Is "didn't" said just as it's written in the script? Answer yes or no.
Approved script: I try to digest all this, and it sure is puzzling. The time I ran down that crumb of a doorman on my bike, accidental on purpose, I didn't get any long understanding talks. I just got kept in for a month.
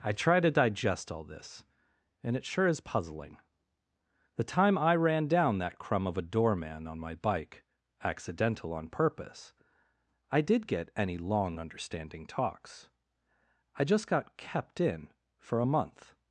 no